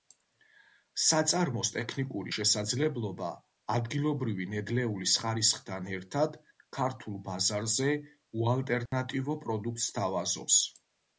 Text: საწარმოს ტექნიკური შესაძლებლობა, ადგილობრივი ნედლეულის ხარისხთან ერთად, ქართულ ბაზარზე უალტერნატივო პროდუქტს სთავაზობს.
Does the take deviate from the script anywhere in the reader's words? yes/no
no